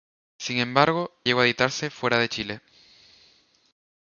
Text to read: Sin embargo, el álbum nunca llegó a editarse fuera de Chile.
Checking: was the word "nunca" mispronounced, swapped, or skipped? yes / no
yes